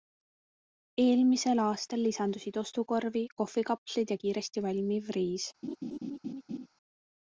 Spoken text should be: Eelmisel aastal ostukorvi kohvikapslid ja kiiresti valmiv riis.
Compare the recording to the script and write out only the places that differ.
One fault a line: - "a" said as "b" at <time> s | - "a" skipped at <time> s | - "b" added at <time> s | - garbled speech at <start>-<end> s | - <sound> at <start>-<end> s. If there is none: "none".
- "lisandusid" added at 2.0 s
- laugh at 5.6-6.7 s